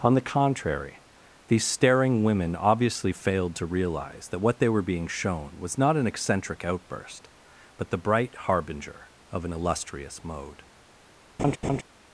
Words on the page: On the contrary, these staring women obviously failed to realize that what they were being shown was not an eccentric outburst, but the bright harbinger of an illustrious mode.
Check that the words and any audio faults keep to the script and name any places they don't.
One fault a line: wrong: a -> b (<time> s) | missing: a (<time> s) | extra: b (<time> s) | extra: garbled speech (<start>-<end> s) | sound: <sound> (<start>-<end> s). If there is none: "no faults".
sound: laugh (11.4-11.8 s)